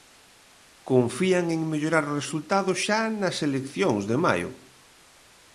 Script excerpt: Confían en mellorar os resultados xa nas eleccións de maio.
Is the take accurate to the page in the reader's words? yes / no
yes